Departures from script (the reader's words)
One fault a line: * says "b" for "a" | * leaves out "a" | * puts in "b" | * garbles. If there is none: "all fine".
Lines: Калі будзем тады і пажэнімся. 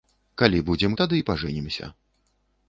all fine